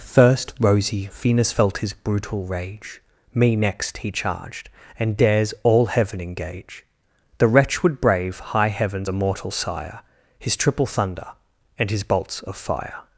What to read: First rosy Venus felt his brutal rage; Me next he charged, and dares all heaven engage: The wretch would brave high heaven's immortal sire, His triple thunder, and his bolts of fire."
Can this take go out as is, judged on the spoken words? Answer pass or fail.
pass